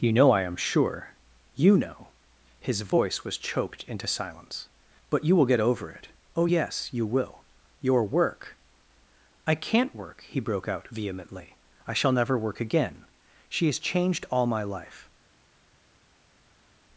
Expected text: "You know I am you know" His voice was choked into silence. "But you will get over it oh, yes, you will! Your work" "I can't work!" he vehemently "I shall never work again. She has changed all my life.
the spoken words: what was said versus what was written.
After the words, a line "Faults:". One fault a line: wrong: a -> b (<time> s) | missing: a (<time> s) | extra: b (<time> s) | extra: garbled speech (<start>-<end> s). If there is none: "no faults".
"You know I am sure you know" His voice was choked into silence. "But you will get over it oh, yes, you will! Your work" "I can't work!" he broke out vehemently "I shall never work again. She has changed all my life.
Faults:
extra: sure (0.6 s)
extra: broke out (10.4 s)